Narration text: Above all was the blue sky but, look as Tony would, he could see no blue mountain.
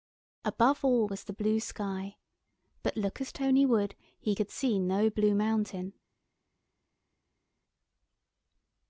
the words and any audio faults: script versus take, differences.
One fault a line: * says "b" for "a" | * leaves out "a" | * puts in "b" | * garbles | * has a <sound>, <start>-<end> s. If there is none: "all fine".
all fine